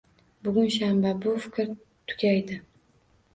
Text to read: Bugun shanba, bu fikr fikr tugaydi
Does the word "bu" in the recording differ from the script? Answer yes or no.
no